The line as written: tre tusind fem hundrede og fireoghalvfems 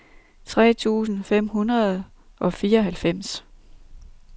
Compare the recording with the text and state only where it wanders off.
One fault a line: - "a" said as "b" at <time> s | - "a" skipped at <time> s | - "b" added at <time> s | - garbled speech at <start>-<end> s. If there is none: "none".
none